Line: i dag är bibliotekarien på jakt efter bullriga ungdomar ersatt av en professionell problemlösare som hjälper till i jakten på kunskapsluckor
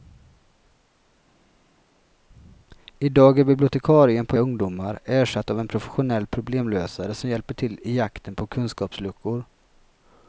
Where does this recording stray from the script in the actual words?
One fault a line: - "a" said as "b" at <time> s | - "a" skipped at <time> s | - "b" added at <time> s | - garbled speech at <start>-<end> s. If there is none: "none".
- "jakt efter bullriga" skipped at 4.4 s